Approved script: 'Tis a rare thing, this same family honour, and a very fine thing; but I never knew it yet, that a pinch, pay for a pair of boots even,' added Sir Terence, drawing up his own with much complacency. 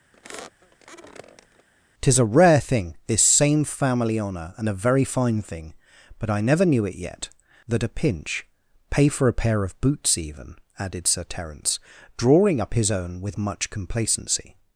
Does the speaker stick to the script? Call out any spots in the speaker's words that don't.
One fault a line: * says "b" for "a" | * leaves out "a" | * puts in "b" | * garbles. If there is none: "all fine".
all fine